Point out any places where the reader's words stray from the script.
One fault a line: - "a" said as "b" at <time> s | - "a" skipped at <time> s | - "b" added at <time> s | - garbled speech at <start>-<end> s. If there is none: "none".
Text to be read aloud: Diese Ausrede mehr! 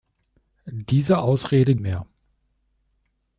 none